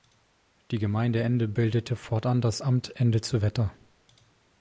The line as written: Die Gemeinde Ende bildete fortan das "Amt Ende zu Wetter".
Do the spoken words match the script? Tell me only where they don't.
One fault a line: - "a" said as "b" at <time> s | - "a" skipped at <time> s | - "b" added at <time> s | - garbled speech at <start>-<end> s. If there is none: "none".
none